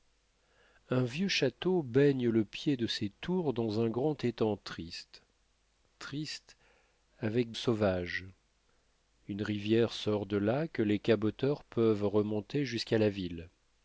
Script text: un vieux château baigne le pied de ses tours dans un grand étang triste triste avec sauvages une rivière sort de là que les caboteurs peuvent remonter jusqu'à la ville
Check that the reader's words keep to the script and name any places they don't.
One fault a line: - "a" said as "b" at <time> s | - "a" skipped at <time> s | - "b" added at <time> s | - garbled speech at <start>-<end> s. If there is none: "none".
none